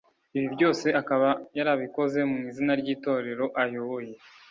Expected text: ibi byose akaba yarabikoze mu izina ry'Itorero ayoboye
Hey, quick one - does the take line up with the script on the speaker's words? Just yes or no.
yes